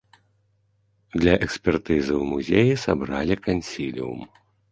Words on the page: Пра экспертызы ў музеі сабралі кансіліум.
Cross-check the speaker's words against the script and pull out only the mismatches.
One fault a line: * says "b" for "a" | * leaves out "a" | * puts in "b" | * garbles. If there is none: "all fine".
* says "Для" for "Пра"